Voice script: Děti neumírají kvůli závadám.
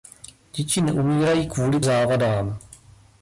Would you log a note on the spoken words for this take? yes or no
no